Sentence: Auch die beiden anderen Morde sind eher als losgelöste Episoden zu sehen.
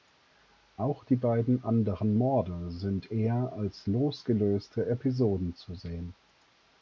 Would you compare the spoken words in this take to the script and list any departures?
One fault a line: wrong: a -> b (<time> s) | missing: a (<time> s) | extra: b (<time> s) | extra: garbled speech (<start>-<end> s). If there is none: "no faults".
no faults